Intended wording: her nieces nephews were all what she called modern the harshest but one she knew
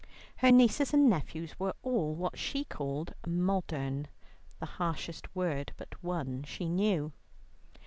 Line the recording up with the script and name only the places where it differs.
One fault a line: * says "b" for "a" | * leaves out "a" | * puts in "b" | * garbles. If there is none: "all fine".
* puts in "and"
* puts in "word"